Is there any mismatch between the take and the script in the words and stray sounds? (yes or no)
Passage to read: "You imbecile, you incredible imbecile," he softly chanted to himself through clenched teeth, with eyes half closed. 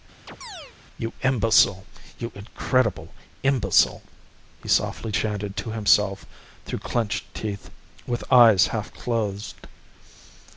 yes